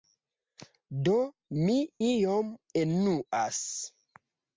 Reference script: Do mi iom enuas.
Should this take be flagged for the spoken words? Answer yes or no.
no